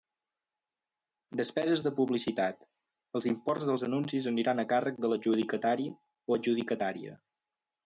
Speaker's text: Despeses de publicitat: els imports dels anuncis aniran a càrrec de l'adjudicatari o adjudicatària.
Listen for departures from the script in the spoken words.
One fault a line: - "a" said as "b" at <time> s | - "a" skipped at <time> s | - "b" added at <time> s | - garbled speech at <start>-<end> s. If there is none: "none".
none